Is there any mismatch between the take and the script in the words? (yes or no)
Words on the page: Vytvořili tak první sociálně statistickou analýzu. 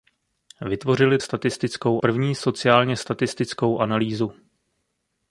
yes